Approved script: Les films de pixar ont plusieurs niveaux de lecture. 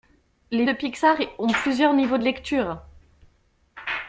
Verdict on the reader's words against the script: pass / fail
fail